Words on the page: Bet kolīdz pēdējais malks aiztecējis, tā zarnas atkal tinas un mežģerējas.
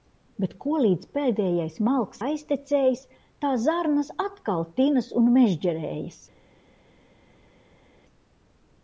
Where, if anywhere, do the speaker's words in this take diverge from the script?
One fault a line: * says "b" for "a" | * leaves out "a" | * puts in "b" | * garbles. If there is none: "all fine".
all fine